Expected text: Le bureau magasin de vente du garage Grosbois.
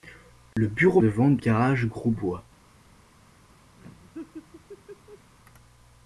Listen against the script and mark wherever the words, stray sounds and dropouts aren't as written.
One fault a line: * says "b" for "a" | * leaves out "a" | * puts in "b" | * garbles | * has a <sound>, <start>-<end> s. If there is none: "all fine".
* has a dropout, 0.5-0.6 s
* leaves out "magasin"
* leaves out "du"
* has a laugh, 3.8-5.3 s